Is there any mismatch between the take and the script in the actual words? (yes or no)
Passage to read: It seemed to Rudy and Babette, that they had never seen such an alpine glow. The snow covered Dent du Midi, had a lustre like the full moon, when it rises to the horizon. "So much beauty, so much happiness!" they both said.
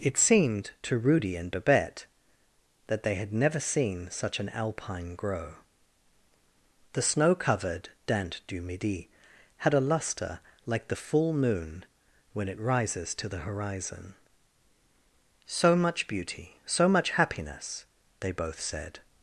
yes